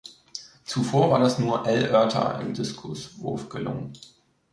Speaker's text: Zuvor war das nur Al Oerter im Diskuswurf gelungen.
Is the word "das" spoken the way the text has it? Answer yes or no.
yes